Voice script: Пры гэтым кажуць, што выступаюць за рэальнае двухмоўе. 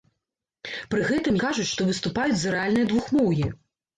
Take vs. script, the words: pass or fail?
pass